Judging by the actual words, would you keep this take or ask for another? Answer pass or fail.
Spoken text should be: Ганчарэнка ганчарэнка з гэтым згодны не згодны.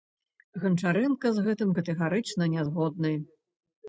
fail